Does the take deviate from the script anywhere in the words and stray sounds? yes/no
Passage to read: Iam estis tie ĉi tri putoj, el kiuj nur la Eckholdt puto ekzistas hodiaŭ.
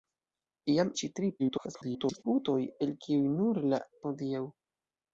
yes